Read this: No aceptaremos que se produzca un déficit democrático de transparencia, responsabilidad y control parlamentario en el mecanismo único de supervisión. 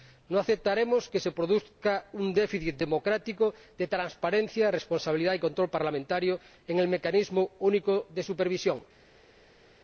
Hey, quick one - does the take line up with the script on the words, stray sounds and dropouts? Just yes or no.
yes